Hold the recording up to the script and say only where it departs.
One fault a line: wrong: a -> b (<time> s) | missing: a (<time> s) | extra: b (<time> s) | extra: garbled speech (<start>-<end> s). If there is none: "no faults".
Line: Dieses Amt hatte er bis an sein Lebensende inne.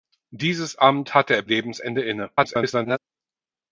missing: bis an sein (1.4 s)
extra: garbled speech (2.4-3.0 s)